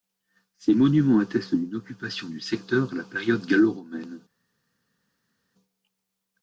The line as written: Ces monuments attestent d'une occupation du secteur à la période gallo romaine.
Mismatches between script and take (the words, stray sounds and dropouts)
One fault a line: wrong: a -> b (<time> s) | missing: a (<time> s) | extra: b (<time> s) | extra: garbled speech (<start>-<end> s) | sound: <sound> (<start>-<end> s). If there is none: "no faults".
no faults